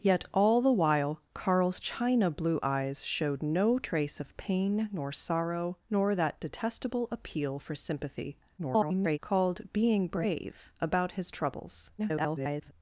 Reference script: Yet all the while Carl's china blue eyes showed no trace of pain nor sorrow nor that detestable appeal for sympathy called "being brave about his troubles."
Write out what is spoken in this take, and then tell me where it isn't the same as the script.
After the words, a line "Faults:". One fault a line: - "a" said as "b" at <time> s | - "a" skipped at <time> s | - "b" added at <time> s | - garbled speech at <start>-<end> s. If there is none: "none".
Yet all the while Carl's china blue eyes showed no trace of pain nor sorrow nor that detestable appeal for sympathy [garbled] called "being brave about his troubles." [garbled]
Faults:
- garbled speech at 8.6-9.2 s
- garbled speech at 12.0-12.7 s